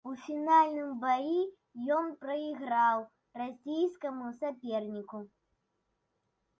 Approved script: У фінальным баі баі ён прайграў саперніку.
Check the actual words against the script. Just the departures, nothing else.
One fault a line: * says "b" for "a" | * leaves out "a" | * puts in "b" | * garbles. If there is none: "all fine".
* leaves out "баі"
* puts in "расійскаму"